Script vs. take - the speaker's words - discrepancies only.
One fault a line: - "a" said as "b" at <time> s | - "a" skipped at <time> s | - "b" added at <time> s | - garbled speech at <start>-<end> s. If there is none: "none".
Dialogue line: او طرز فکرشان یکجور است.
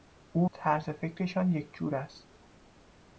none